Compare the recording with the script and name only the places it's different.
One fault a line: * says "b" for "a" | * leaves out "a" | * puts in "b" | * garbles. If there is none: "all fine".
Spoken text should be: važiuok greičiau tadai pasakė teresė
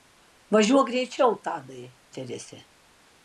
* leaves out "pasakė"